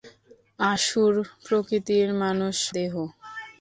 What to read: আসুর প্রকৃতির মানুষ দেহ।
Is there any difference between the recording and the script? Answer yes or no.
no